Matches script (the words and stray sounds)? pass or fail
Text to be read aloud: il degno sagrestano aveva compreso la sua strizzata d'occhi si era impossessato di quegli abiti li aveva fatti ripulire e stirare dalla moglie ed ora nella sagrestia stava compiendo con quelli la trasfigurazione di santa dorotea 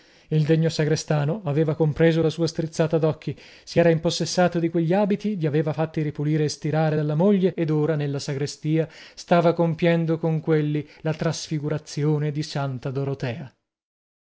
pass